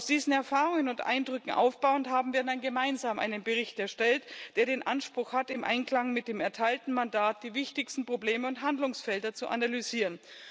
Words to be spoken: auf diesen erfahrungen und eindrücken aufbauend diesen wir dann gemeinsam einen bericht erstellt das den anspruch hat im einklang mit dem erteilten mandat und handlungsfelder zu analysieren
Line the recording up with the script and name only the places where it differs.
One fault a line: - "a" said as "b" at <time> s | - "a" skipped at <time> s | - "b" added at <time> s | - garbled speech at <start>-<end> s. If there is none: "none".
- "diesen" said as "haben" at 2.1 s
- "das" said as "der" at 4.5 s
- "die wichtigsten probleme" added at 7.4 s